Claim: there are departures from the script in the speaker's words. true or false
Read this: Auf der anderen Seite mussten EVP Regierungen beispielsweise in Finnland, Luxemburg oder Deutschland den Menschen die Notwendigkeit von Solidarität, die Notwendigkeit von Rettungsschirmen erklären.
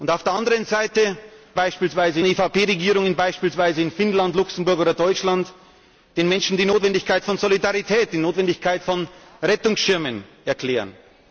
true